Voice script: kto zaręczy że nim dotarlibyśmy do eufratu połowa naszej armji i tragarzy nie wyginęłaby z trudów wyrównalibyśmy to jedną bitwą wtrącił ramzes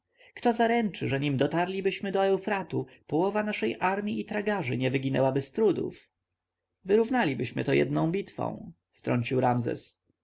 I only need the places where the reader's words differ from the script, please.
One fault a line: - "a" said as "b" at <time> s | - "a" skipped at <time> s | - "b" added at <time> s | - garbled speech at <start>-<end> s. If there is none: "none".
none